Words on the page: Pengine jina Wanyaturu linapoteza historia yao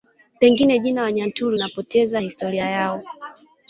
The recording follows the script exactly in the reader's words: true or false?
true